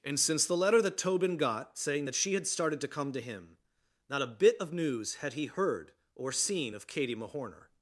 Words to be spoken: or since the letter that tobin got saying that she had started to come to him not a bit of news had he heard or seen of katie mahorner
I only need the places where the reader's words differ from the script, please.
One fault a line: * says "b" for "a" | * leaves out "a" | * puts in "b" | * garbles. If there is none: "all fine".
* says "and" for "or"